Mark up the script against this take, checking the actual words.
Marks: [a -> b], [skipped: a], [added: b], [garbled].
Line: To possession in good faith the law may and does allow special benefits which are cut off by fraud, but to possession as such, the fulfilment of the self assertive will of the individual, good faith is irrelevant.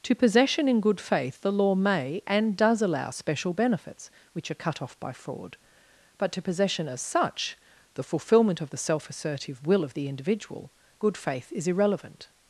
To possession in good faith the law may and does allow special benefits which are cut off by fraud, but to possession as such, the fulfilment of the self assertive will of the individual, good faith is irrelevant.